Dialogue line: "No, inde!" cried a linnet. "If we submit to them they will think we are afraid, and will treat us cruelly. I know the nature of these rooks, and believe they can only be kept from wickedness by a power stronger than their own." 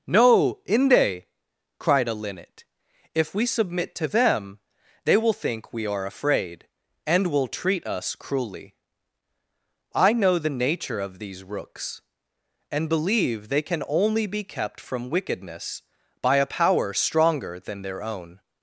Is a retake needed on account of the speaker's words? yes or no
no